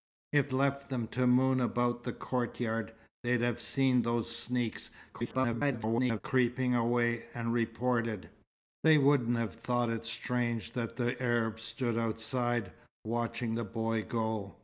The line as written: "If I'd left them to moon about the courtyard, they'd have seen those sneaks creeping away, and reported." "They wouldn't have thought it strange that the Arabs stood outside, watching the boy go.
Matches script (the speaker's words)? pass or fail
fail